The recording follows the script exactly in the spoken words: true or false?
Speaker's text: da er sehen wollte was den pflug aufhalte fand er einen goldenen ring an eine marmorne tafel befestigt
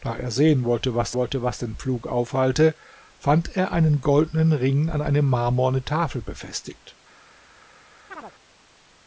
false